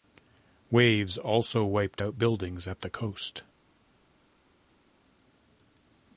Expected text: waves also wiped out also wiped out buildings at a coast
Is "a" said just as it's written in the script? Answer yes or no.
no